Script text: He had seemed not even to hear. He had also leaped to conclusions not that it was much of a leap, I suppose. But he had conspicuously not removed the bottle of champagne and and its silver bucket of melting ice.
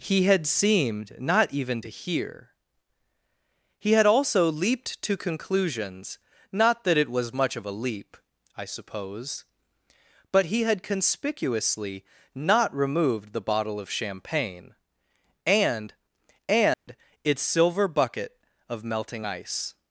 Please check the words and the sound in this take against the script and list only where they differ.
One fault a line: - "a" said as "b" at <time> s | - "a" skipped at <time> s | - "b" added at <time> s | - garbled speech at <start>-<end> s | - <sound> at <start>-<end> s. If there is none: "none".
- dropout at 16.7-16.9 s